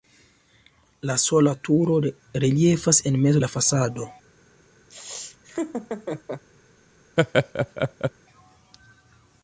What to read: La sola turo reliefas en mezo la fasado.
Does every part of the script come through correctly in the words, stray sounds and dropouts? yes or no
no